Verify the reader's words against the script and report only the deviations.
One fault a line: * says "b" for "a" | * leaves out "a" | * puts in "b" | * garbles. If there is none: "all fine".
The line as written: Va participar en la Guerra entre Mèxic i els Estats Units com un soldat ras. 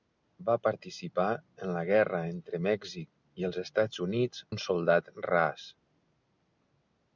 * leaves out "com"